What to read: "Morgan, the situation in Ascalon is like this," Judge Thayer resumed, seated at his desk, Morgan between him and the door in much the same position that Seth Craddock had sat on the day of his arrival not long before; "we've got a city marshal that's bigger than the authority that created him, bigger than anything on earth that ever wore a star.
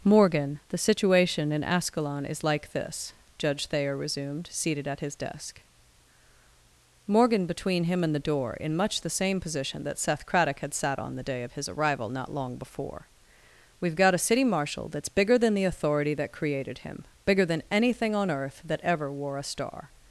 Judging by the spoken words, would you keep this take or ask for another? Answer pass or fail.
pass